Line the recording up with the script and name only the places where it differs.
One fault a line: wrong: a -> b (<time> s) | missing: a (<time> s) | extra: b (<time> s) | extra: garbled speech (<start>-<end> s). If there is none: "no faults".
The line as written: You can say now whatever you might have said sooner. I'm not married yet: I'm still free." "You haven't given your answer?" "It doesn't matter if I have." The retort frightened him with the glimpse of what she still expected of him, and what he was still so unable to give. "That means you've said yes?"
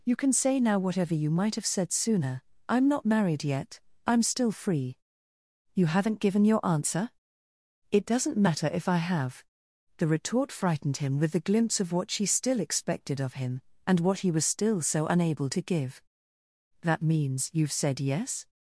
no faults